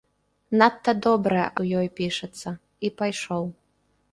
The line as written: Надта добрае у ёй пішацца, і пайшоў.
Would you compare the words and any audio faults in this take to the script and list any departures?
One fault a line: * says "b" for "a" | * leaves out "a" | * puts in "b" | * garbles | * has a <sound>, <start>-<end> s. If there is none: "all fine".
all fine